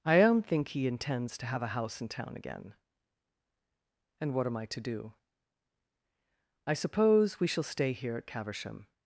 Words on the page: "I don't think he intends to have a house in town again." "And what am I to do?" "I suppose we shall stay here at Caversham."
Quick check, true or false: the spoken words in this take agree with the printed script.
true